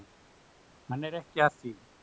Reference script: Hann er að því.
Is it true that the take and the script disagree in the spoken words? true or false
true